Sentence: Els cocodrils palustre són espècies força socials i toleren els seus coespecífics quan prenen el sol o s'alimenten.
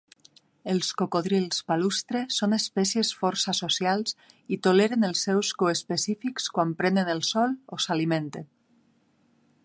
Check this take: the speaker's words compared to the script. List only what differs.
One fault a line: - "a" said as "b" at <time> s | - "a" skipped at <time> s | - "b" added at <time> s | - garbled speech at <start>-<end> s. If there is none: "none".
none